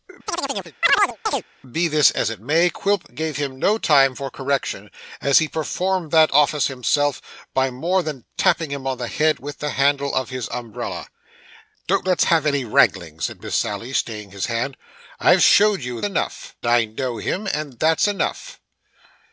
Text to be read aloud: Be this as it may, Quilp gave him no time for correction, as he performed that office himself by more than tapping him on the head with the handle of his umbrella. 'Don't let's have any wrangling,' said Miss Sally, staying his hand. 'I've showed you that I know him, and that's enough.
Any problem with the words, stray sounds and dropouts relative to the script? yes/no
yes